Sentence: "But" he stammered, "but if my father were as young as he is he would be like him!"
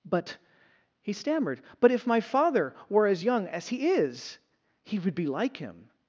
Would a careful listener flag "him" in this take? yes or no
no